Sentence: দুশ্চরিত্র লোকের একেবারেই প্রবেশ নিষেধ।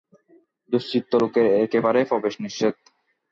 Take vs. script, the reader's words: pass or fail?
pass